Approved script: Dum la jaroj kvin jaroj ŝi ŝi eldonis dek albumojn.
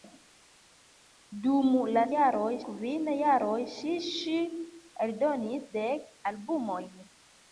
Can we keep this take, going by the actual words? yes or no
yes